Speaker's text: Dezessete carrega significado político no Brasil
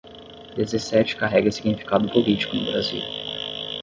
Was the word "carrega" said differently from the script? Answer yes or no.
no